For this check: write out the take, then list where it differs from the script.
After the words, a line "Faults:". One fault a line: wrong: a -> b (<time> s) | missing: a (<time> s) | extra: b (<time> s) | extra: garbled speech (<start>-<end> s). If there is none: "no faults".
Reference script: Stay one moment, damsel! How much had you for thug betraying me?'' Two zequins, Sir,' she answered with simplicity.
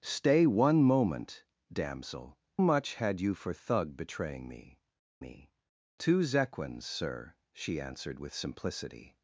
Stay one moment, damsel! Much had you for thug betraying me me?'' Two zequins, Sir,' she answered with simplicity.
Faults:
missing: How (2.4 s)
extra: me (5.2 s)